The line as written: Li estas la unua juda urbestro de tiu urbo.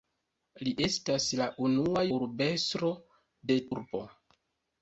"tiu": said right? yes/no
no